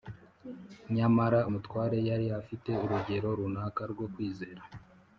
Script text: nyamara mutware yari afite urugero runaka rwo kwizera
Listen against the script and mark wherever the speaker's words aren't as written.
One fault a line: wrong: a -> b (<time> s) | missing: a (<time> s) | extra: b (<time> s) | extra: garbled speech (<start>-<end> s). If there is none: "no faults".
no faults